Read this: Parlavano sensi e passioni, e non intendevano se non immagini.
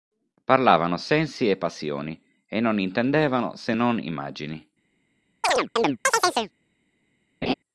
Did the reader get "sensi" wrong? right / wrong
right